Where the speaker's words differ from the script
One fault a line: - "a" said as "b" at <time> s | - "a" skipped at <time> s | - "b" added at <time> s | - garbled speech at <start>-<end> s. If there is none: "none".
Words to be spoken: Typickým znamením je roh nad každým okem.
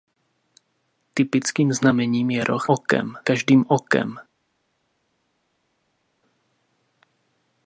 - "nad" said as "okem" at 2.7 s